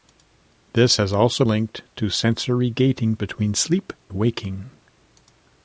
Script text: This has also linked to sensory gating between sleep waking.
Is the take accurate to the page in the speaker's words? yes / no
yes